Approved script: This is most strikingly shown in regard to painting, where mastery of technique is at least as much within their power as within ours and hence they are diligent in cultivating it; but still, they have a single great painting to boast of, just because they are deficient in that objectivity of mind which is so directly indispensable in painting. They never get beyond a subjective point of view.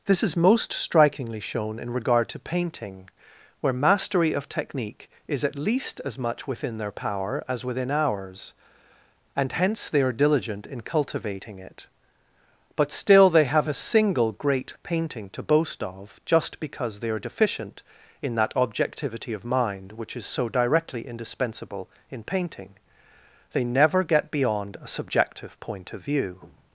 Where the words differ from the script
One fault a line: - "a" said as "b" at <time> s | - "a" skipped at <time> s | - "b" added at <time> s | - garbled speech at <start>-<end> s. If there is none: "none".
none